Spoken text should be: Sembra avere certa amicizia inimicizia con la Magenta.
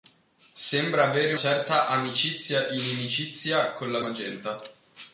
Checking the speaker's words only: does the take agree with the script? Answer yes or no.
yes